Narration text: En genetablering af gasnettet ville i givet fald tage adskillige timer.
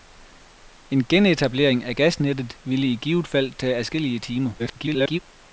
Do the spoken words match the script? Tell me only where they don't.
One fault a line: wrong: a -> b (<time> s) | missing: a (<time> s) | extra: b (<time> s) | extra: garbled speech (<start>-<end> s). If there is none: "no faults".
extra: garbled speech (4.6-5.2 s)